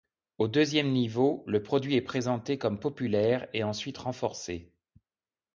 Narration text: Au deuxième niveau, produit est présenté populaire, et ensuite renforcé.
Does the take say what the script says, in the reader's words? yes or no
no